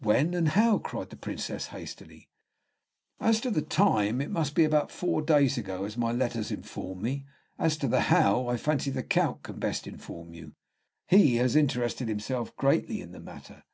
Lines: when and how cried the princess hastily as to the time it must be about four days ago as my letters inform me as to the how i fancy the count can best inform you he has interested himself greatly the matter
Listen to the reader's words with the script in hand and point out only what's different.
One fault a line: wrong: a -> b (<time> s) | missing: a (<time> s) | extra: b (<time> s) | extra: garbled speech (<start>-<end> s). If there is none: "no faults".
extra: in (13.0 s)